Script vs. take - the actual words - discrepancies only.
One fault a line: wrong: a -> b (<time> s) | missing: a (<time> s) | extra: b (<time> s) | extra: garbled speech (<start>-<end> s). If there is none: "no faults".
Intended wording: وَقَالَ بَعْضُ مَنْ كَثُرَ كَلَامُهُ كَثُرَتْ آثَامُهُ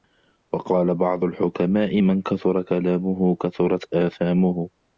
extra: الْحُكَمَاءِ (1.2 s)